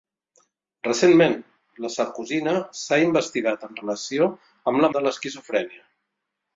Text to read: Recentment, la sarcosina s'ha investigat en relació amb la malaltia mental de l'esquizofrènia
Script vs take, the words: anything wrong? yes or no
yes